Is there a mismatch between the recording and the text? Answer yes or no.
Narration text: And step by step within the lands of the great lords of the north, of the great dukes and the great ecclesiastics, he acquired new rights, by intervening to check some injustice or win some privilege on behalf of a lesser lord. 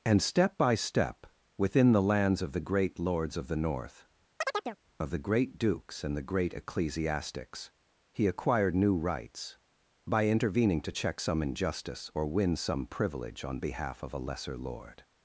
no